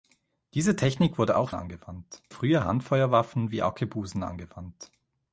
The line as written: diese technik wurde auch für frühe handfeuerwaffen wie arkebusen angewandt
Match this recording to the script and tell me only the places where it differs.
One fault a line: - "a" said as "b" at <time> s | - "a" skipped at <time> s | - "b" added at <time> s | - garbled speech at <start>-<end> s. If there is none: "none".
- "für" said as "angewandt" at 1.5 s